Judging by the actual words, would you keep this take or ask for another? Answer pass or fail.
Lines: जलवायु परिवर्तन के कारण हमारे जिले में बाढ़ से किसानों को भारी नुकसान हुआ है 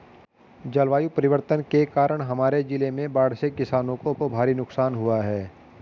fail